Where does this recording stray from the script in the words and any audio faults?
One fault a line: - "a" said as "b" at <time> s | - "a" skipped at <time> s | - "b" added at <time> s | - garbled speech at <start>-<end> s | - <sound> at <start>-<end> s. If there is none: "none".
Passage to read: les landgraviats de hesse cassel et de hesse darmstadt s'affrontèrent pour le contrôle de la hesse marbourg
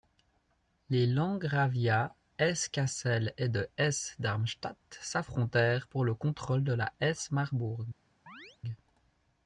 - "de" skipped at 2.1 s
- chirp at 8.3-8.6 s